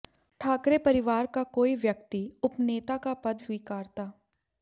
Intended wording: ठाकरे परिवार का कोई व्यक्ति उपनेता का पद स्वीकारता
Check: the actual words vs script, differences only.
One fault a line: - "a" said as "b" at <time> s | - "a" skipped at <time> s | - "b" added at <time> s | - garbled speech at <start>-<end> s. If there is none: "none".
none